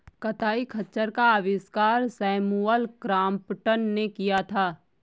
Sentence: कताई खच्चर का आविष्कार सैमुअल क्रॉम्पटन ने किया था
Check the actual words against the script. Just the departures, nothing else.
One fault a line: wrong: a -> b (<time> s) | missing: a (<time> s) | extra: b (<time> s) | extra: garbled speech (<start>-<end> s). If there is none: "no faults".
no faults